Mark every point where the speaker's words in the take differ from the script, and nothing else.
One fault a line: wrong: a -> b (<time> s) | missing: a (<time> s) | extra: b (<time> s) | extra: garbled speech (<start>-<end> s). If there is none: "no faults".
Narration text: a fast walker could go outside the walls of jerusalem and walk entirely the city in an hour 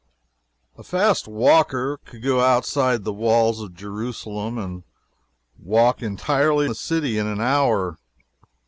no faults